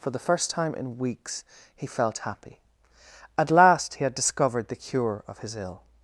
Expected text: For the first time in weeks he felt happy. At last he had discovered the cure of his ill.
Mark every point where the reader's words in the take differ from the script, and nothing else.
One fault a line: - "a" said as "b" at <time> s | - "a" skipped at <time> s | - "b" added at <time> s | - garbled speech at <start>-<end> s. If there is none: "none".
none